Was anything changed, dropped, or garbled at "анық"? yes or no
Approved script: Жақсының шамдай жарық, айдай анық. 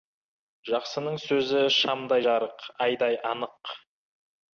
no